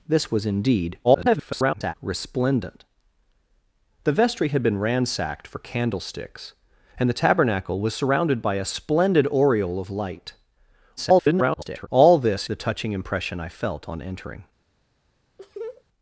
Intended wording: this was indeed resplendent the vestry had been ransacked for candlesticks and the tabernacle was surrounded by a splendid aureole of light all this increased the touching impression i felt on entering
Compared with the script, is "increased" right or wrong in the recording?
wrong